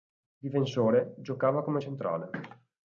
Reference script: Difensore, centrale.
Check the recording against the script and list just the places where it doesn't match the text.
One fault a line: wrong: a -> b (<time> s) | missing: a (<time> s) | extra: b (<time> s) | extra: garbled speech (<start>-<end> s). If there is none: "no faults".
extra: giocava come (1.2 s)